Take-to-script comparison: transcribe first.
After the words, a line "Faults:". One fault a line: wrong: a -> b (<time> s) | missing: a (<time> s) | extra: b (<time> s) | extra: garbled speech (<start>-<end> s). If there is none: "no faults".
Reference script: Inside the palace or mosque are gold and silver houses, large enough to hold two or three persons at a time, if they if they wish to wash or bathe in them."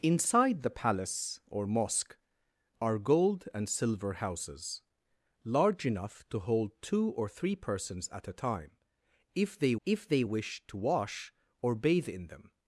Inside the palace or mosque are gold and silver houses, large enough to hold two or three persons at a time, if they if they wish to wash or bathe in them."
Faults:
no faults